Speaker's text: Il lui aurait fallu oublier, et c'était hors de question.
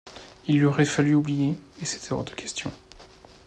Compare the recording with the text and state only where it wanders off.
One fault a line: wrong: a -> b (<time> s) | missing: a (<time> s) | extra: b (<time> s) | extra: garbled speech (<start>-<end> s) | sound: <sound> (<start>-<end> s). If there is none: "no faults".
no faults